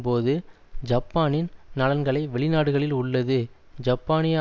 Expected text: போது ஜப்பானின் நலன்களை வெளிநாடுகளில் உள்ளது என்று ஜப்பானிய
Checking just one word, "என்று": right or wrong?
wrong